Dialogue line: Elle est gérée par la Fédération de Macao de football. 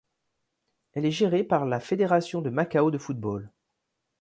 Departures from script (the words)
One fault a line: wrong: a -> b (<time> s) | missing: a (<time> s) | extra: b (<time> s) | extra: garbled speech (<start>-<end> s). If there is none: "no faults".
no faults